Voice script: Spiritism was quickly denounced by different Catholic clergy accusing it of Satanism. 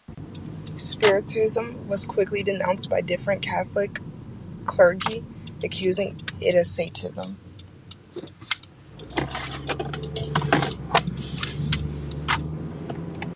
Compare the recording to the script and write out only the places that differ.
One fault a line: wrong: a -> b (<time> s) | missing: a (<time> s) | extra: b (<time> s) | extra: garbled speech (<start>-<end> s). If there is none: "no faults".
no faults